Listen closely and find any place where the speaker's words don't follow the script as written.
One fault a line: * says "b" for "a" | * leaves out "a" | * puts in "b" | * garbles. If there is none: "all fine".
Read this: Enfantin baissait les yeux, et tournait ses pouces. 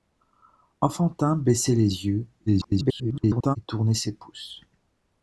* garbles